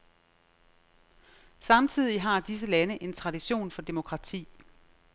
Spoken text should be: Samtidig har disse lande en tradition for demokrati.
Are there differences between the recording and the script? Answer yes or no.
no